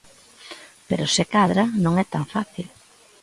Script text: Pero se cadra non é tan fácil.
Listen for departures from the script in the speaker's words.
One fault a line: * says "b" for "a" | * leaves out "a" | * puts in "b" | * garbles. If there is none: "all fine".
all fine